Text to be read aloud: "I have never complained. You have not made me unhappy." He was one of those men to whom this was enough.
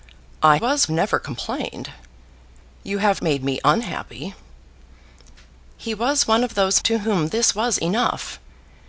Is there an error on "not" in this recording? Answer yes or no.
yes